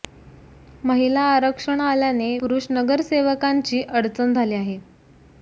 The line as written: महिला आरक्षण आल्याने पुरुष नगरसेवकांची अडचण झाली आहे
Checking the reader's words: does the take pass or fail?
pass